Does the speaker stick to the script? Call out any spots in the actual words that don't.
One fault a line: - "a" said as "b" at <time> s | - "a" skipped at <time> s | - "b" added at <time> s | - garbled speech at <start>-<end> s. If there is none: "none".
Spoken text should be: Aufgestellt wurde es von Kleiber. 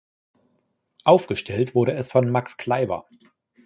- "Max" added at 2.3 s